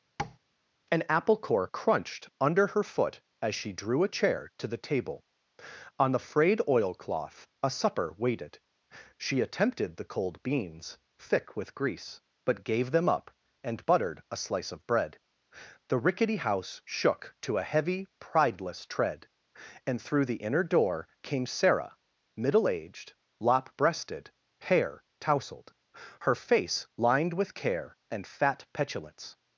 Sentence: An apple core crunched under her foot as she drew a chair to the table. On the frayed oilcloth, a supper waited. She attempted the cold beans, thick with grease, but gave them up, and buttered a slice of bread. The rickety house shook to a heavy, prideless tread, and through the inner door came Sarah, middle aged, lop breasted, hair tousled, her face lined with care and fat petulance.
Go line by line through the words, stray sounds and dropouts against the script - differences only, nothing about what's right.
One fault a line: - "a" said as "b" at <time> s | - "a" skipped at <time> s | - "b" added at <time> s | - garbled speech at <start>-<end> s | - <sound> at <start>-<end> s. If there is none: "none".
- tap at 0.2-0.4 s